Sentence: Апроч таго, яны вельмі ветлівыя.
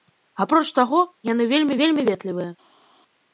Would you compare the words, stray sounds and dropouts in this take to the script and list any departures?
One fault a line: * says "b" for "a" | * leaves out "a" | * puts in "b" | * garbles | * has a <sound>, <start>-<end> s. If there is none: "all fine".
* puts in "вельмі"